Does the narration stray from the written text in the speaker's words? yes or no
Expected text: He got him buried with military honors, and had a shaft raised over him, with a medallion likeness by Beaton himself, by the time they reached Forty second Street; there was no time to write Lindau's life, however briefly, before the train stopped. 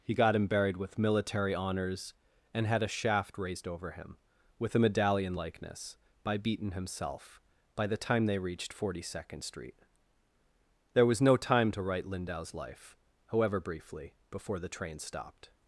no